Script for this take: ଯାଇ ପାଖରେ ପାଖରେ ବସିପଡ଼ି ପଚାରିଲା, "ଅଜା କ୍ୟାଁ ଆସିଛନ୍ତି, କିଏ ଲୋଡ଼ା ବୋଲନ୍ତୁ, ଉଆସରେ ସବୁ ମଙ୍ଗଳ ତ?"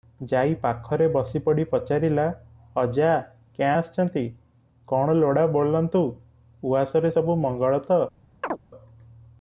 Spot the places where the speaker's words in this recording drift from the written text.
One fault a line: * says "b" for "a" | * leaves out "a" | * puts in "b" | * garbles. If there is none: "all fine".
* leaves out "ପାଖରେ"
* says "କଣ" for "କିଏ"